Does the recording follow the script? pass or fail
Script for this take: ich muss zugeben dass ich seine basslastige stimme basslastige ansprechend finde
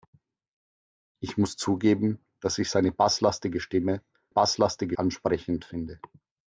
pass